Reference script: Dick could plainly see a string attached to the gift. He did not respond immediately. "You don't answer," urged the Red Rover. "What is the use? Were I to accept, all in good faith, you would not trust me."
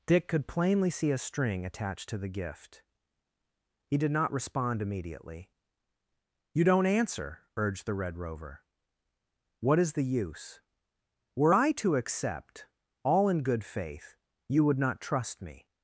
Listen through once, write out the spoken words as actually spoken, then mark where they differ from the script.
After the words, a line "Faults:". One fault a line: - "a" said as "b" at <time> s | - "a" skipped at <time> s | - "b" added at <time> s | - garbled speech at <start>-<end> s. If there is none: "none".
Dick could plainly see a string attached to the gift. He did not respond immediately. "You don't answer," urged the Red Rover. "What is the use? Were I to accept, all in good faith, you would not trust me."
Faults:
none